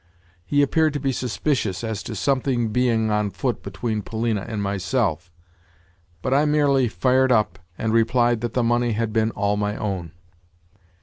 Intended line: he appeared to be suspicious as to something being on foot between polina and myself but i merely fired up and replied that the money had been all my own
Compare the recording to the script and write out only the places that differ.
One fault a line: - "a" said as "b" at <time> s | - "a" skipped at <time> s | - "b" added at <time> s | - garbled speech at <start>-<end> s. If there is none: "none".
none